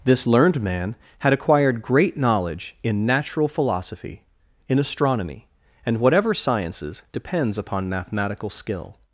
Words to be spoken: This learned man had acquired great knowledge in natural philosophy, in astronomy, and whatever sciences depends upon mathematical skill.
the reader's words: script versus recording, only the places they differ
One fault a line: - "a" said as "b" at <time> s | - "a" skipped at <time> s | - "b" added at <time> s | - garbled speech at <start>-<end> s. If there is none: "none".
none